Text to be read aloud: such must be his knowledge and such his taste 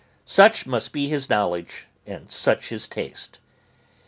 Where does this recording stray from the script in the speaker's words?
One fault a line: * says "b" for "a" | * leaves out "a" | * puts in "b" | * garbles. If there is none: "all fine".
all fine